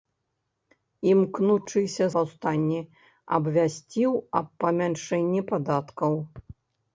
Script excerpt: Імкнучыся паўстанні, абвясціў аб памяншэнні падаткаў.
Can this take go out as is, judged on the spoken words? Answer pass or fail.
pass